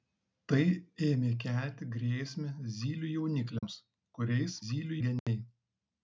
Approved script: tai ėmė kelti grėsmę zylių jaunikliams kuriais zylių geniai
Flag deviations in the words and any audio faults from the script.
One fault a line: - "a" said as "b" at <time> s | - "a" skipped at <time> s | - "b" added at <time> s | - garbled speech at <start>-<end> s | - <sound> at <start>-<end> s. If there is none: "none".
- dropout at 3.6-3.6 s
- dropout at 5.2-5.3 s